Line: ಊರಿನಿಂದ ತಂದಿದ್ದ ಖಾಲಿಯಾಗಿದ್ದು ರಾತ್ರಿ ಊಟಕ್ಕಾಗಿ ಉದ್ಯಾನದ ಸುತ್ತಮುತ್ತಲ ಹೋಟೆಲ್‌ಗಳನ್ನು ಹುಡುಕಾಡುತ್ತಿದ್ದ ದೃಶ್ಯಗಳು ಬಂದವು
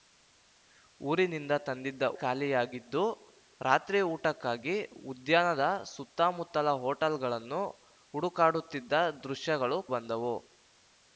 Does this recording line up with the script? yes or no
yes